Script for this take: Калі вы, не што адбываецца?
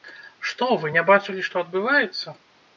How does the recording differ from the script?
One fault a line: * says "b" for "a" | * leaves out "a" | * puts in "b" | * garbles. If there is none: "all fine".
* says "Што" for "Калі"
* puts in "бачылі"